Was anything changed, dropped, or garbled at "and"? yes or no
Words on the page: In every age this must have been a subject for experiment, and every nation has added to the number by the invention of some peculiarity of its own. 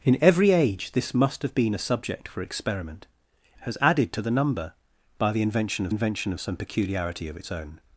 yes